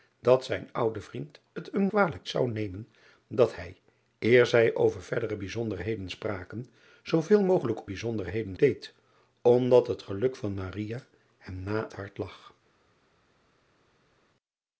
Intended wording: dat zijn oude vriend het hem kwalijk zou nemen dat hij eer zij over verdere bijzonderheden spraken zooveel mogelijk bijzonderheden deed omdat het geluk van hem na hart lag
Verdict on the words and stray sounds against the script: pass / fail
pass